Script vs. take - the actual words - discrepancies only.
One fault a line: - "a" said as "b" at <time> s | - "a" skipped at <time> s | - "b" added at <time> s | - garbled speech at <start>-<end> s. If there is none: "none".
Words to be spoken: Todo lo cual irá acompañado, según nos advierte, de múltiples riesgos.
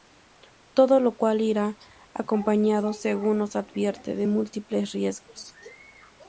none